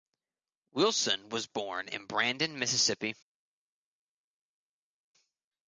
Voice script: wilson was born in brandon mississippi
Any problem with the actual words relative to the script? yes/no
no